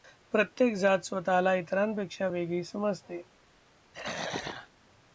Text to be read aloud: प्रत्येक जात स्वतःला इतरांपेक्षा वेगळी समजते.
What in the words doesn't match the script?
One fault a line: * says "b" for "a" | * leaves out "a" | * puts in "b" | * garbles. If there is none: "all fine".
all fine